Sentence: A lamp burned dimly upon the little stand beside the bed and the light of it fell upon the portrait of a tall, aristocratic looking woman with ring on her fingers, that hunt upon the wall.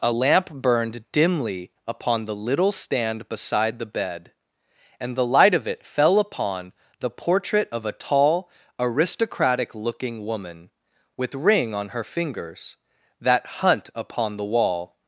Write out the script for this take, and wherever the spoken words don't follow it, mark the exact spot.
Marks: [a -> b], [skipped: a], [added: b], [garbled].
A lamp burned dimly upon the little stand beside the bed and the light of it fell upon the portrait of a tall, aristocratic looking woman with ring on her fingers, that hunt upon the wall.